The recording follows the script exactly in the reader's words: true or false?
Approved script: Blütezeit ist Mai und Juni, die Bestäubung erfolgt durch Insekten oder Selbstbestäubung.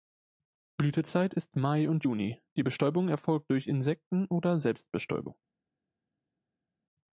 true